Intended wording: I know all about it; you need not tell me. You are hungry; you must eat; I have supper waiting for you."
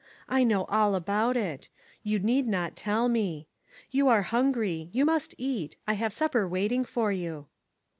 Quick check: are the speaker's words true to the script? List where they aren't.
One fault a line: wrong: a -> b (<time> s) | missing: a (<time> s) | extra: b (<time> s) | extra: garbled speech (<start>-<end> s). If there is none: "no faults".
no faults